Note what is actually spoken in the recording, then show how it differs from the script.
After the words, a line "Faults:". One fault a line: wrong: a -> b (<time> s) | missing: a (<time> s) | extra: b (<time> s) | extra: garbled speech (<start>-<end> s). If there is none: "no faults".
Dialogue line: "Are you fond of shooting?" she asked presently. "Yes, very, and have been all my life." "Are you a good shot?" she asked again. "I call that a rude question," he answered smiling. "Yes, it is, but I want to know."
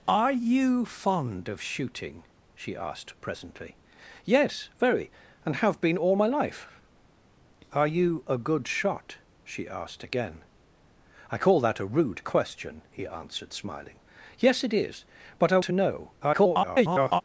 "Are you fond of shooting?" she asked presently. "Yes, very, and have been all my life." "Are you a good shot?" she asked again. "I call that a rude question," he answered smiling. "Yes, it is, but I to know." [garbled]
Faults:
missing: want (15.6 s)
extra: garbled speech (16.2-17.2 s)